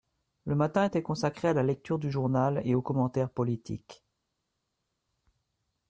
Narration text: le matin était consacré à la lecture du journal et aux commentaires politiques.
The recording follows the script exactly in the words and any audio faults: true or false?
true